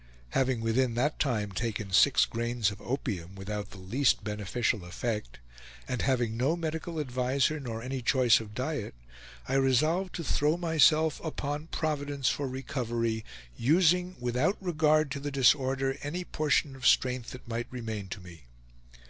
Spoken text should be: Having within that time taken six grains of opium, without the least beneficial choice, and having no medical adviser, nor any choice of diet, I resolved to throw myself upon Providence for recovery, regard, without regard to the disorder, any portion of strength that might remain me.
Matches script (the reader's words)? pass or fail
fail